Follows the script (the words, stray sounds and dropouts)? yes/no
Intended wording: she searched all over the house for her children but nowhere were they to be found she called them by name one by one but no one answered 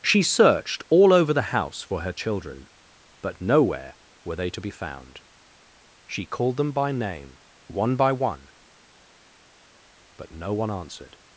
yes